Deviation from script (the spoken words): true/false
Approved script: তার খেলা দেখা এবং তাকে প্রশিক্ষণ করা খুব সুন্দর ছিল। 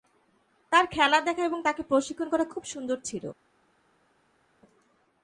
false